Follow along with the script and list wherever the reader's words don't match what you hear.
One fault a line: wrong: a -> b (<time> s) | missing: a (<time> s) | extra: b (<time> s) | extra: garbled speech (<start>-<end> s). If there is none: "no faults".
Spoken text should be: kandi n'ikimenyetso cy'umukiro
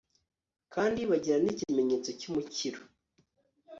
extra: bagira (1.1 s)